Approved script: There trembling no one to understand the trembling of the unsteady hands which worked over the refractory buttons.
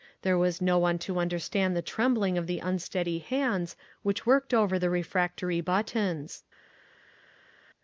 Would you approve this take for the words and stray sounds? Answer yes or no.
no